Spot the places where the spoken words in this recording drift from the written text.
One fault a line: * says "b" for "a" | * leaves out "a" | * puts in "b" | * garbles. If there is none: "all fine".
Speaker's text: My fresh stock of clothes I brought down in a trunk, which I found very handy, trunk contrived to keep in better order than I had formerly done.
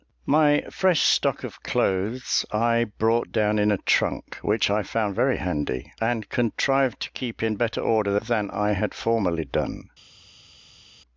* says "and" for "trunk"